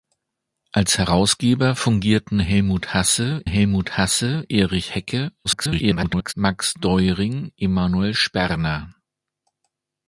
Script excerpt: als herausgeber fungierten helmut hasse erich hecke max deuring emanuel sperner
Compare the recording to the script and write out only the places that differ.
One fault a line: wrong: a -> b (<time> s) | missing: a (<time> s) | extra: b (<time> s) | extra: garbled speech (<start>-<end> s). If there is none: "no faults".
extra: helmut hasse (3.4 s)
extra: garbled speech (5.4-6.3 s)